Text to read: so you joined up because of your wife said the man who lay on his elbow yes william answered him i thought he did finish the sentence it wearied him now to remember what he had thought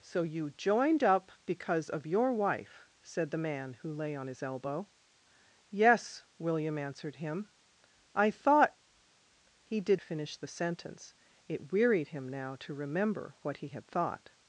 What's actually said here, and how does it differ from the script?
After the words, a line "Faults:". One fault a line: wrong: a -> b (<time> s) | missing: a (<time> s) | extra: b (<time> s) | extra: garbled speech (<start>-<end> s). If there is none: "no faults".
so you joined up because of your wife said the man who lay on his elbow yes william answered him i thought he did finish the sentence it wearied him now to remember what he had thought
Faults:
no faults